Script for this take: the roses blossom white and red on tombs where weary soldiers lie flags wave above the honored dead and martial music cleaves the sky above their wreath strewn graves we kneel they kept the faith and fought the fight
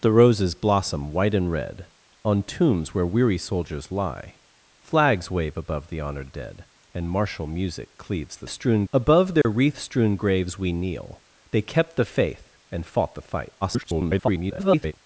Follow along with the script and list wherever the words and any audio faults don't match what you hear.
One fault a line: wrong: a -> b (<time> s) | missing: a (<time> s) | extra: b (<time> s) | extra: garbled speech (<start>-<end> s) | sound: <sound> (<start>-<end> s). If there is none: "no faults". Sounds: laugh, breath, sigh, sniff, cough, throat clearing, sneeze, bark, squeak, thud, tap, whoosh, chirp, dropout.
wrong: sky -> strewn (8.5 s)
sound: dropout (9.4-9.5 s)
extra: garbled speech (13.6-14.9 s)